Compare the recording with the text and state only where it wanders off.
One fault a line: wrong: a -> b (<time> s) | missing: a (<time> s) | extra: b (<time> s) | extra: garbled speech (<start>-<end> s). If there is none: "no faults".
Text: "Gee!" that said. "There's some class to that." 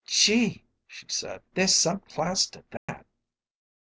wrong: that -> she (0.9 s)